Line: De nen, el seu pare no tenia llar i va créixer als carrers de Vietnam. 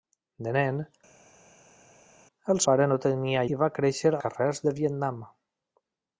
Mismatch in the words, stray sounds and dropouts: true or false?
true